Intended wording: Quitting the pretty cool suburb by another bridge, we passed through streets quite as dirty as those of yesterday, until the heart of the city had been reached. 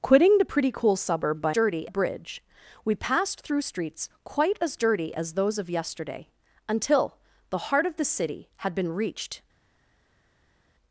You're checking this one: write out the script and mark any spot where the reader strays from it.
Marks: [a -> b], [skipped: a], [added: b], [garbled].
Quitting the pretty cool suburb by [another -> dirty] bridge, we passed through streets quite as dirty as those of yesterday, until the heart of the city had been reached.